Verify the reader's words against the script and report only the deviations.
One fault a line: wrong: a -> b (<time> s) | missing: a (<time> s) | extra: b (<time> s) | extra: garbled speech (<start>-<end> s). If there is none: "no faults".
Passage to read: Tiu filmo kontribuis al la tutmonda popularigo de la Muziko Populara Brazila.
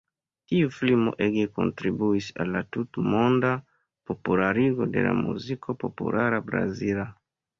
extra: ege (1.2 s)